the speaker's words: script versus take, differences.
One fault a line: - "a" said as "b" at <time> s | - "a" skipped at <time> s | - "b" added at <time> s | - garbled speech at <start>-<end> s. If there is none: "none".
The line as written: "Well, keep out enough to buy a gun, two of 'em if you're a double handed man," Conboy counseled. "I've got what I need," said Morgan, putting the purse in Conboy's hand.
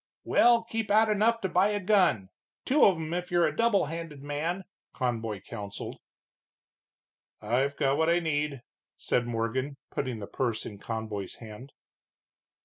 none